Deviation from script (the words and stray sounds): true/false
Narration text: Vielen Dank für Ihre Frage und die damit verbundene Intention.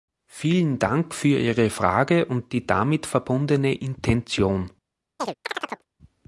true